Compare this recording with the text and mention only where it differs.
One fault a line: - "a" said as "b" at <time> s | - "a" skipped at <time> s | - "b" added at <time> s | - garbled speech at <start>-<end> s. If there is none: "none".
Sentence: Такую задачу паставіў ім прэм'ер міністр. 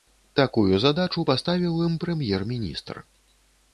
none